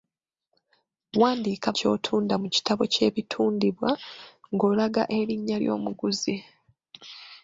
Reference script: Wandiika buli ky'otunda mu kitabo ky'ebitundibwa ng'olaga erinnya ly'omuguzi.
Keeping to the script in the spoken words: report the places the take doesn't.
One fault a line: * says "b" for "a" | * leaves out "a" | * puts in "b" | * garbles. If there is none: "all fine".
* leaves out "buli"